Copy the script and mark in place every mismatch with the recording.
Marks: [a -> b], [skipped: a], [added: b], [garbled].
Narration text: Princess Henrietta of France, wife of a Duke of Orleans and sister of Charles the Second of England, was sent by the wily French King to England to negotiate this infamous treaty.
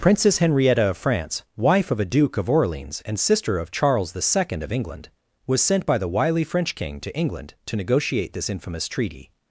Princess Henrietta of France, wife of a Duke of Orleans and sister of Charles the Second of England, was sent by the wily French King to England to negotiate this infamous treaty.